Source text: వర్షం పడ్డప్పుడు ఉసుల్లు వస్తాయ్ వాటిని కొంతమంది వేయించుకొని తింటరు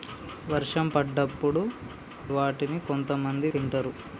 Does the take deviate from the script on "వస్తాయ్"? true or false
true